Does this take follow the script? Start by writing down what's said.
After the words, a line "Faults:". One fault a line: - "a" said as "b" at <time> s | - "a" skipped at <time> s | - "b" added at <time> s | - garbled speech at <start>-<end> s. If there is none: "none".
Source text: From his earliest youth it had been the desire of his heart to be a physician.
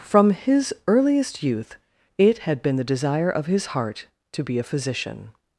From his earliest youth it had been the desire of his heart to be a physician.
Faults:
none